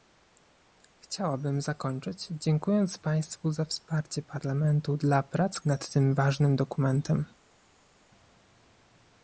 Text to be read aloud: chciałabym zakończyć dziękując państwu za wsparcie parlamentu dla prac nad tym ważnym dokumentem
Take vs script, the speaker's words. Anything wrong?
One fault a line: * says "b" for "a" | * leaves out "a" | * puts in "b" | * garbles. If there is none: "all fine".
all fine